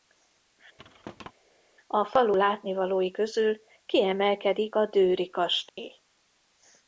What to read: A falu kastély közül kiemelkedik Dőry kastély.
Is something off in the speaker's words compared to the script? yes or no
yes